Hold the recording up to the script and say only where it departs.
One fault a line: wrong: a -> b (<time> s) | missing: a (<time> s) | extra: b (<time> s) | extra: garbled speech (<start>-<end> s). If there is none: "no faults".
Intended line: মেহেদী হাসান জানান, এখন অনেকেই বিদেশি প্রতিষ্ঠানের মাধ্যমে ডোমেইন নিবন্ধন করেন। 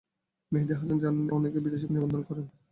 missing: এখন (1.2 s)
missing: প্রতিষ্ঠানের মাধ্যমে ডোমেইন (1.9 s)